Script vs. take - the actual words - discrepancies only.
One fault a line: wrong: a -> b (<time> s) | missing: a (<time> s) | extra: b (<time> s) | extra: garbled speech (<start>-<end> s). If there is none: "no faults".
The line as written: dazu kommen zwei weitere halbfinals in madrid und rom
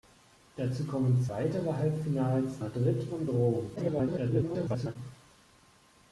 missing: zwei (1.2 s)
missing: in (2.6 s)
extra: garbled speech (3.8-5.0 s)